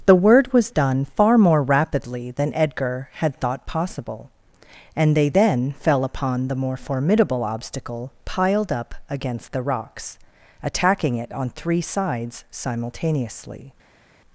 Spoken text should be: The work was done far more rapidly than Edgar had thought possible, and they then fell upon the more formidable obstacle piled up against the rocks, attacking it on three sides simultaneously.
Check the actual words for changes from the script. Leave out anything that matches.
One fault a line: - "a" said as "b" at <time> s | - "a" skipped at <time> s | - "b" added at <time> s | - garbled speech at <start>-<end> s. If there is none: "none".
- "work" said as "word" at 0.1 s